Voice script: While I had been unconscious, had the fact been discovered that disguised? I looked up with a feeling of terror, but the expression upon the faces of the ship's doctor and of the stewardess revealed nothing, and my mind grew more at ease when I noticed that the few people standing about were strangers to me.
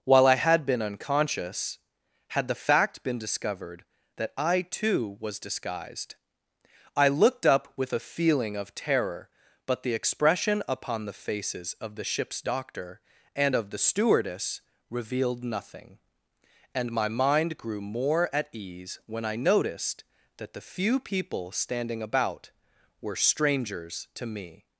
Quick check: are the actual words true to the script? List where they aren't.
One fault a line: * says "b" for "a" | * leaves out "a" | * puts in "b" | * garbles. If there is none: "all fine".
* puts in "I too was"